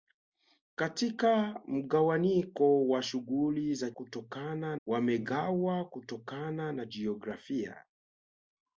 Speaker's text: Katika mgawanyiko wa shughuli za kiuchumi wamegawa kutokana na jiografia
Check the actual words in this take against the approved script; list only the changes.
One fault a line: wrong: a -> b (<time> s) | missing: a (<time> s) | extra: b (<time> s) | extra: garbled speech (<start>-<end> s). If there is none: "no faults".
wrong: kiuchumi -> kutokana (3.9 s)